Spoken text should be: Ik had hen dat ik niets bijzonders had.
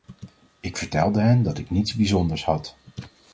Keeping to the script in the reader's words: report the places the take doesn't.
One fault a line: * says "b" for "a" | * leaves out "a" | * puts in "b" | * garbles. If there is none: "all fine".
* says "vertelde" for "had"